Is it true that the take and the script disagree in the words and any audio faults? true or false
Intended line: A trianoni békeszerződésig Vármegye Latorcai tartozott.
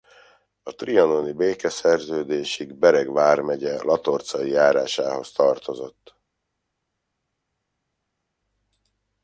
true